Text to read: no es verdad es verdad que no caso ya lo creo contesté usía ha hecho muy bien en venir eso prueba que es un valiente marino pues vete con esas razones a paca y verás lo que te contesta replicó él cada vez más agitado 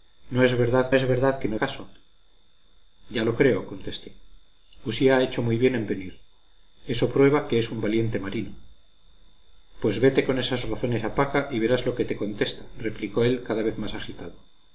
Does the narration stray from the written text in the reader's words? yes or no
no